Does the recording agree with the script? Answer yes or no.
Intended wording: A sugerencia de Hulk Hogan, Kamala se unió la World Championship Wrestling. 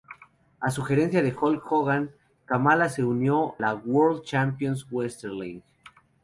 yes